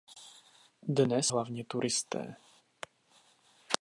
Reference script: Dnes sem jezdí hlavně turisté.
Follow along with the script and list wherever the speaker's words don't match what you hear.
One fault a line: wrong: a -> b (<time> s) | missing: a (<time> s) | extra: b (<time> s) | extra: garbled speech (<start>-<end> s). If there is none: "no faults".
missing: sem jezdí (1.3 s)